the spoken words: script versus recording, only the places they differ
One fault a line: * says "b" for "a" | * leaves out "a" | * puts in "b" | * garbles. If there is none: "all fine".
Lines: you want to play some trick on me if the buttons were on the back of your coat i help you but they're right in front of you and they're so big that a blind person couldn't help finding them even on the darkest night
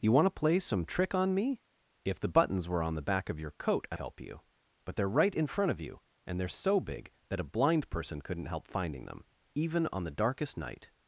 all fine